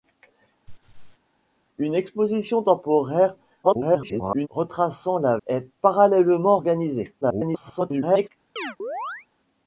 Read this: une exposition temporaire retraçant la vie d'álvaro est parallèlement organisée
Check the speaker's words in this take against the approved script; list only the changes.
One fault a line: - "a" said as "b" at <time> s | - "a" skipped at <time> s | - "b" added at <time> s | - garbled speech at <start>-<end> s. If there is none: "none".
- garbled speech at 3.6-4.5 s
- "vie d'álvaro" skipped at 5.4 s
- garbled speech at 7.2-8.3 s